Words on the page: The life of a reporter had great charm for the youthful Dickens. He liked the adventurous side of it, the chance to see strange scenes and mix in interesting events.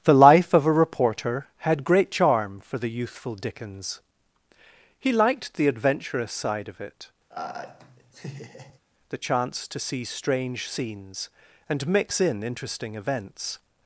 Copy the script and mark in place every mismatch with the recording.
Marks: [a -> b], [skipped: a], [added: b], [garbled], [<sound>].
The life of a reporter had great charm for the youthful Dickens. He liked the adventurous side of it, [laugh] the chance to see strange scenes and mix in interesting events.